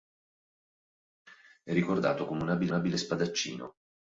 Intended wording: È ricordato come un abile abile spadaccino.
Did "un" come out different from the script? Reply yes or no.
no